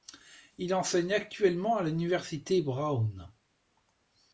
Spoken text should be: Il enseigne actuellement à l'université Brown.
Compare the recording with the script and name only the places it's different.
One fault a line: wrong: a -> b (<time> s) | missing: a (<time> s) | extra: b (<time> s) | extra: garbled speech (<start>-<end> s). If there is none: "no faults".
no faults